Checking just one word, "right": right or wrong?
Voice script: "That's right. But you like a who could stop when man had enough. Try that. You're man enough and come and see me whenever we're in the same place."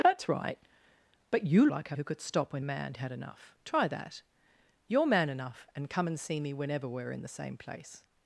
right